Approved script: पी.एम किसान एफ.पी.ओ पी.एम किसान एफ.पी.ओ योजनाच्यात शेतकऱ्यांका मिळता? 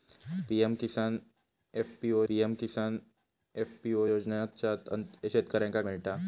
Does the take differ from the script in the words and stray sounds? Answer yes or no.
no